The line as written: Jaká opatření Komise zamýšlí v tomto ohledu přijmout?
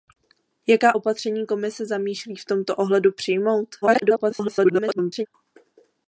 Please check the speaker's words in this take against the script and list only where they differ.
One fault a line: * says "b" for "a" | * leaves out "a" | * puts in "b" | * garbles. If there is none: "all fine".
* garbles